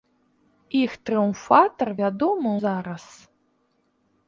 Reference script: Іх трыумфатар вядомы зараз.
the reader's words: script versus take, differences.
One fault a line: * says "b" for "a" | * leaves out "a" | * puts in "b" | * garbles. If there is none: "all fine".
all fine